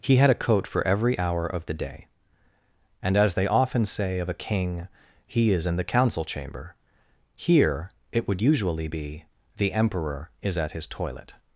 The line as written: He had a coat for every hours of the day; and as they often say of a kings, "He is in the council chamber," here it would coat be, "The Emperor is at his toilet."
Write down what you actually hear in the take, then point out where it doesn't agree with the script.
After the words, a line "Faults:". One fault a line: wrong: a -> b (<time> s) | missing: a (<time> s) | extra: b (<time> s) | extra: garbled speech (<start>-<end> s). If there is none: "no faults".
He had a coat for every hour of the day; and as they often say of a king, "He is in the council chamber," here it would usually be, "The Emperor is at his toilet."
Faults:
wrong: hours -> hour (1.2 s)
wrong: kings -> king (4.3 s)
wrong: coat -> usually (8.4 s)